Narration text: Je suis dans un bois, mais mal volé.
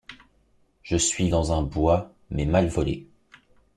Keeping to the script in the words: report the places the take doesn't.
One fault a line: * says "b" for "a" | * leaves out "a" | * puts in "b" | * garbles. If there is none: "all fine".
all fine